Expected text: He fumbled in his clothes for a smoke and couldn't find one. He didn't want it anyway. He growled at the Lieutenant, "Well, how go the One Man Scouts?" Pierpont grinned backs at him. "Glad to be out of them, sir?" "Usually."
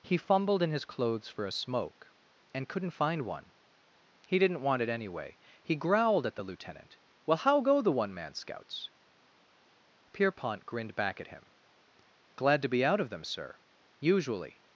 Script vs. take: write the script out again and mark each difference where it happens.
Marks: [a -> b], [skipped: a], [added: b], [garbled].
He fumbled in his clothes for a smoke and couldn't find one. He didn't want it anyway. He growled at the Lieutenant, "Well, how go the One Man Scouts?" Pierpont grinned [backs -> back] at him. "Glad to be out of them, sir?" "Usually."